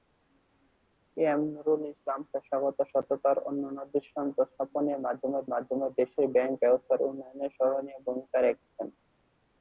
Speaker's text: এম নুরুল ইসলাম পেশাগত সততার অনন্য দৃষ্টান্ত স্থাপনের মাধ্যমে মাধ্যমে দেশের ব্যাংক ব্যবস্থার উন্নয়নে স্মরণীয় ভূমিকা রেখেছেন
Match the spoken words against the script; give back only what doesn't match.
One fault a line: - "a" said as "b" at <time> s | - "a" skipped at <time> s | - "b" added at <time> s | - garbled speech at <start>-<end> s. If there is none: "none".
none